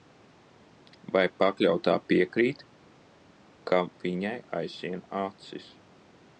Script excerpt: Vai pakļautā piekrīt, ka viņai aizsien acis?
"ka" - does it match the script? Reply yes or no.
yes